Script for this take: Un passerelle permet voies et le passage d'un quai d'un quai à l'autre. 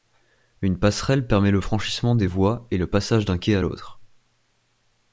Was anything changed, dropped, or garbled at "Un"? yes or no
yes